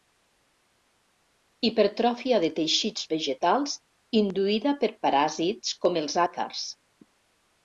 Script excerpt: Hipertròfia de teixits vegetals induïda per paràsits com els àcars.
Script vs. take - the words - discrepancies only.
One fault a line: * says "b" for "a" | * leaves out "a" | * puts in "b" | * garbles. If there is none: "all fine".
all fine